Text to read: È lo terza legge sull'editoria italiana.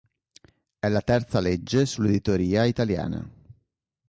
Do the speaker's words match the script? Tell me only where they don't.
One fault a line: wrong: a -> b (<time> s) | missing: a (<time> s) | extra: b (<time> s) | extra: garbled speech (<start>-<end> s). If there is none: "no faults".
wrong: lo -> la (0.9 s)